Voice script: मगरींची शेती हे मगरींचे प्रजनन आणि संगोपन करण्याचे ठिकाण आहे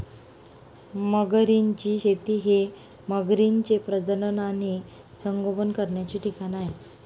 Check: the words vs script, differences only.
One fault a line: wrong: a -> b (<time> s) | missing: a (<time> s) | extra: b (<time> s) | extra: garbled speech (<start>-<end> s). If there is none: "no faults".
no faults